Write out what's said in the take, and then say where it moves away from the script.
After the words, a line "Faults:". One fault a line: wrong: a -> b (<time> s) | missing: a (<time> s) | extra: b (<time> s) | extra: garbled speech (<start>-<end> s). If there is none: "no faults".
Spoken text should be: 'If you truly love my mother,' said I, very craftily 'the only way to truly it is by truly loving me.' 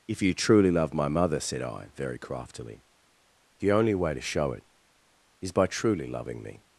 'If you truly love my mother,' said I, very craftily 'the only way to show it is by truly loving me.'
Faults:
wrong: truly -> show (4.2 s)